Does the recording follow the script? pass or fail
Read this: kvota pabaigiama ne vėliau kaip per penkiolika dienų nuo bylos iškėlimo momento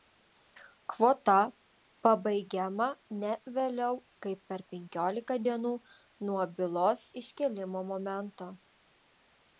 pass